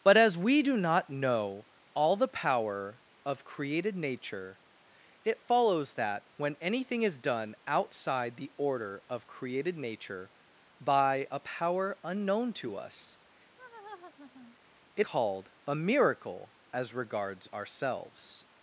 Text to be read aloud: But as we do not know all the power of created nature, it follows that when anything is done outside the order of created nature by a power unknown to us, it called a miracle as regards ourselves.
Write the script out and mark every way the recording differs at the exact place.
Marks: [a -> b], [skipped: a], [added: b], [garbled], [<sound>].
But as we do not know all the power of created nature, it follows that when anything is done outside the order of created nature by a power unknown to us, [laugh] it called a miracle as regards ourselves.